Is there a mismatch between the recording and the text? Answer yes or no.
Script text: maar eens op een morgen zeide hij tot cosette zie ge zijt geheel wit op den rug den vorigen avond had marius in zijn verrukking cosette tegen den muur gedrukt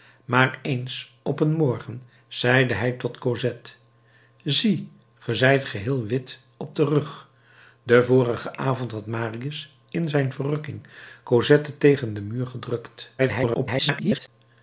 yes